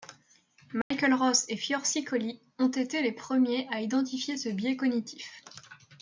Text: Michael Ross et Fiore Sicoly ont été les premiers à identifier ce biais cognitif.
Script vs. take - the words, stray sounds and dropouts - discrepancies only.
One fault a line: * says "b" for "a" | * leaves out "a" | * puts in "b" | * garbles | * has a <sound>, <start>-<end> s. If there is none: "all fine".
* has a dropout, 0.8-0.9 s